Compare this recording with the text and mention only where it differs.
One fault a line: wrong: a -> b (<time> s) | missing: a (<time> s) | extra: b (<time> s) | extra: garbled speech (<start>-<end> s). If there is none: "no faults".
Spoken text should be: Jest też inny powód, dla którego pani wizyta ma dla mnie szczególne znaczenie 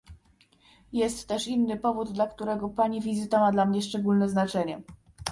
no faults